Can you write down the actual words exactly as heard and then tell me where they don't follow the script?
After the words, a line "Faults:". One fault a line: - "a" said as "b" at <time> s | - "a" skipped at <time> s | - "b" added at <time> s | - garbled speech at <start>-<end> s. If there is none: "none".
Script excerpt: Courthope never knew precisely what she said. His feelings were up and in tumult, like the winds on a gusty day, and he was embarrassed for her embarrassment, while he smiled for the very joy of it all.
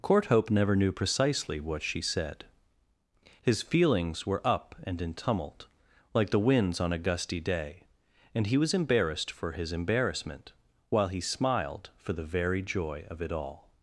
Courthope never knew precisely what she said. His feelings were up and in tumult, like the winds on a gusty day, and he was embarrassed for his embarrassment, while he smiled for the very joy of it all.
Faults:
- "her" said as "his" at 9.5 s